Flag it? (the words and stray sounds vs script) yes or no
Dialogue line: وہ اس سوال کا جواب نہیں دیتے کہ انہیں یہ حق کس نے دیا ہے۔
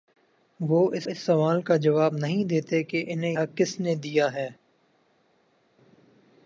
yes